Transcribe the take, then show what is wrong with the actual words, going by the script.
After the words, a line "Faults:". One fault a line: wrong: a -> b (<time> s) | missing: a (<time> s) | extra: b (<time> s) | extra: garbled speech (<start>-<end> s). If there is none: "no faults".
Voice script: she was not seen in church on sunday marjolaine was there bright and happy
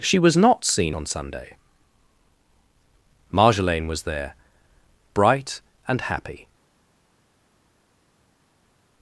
she was not seen on sunday marjolaine was there bright and happy
Faults:
missing: in church (0.9 s)